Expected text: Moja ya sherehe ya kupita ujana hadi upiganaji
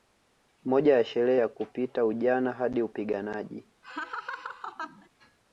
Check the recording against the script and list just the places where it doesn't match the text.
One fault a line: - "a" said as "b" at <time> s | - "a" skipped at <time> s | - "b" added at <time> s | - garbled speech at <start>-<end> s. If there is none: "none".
none